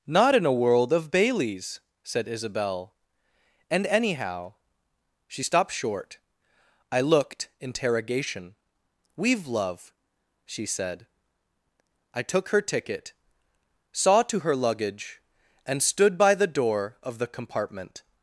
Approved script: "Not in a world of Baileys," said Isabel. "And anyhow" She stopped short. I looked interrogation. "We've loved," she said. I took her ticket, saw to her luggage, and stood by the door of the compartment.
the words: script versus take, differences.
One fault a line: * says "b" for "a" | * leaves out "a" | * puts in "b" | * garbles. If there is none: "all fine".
* says "love" for "loved"